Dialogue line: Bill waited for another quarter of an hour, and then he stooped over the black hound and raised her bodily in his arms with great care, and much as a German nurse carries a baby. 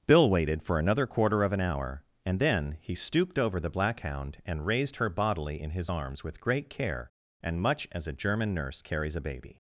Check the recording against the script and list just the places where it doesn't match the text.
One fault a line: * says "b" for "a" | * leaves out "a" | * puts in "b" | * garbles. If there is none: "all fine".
all fine